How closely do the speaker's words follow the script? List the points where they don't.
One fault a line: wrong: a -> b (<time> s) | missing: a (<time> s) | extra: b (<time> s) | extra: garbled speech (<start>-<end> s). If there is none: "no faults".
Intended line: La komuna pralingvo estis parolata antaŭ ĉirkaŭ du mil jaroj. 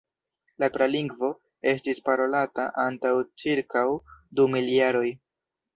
missing: komuna (0.7 s)